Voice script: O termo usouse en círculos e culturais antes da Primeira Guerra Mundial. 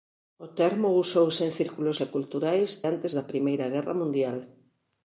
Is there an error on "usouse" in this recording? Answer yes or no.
no